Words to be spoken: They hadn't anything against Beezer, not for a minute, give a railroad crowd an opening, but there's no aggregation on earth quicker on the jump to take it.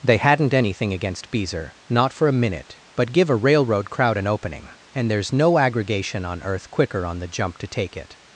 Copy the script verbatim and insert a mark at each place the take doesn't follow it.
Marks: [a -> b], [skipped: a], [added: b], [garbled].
They hadn't anything against Beezer, not for a minute, [added: but] give a railroad crowd an opening, [but -> and] there's no aggregation on earth quicker on the jump to take it.